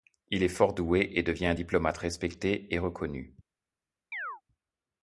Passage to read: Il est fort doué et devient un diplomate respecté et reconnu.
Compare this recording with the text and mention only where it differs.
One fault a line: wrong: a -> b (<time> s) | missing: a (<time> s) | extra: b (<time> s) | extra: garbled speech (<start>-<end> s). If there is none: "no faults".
no faults